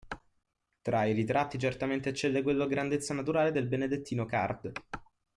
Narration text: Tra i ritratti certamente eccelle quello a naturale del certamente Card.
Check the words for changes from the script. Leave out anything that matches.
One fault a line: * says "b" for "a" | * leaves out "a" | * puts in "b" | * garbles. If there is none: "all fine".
* puts in "grandezza"
* says "benedettino" for "certamente"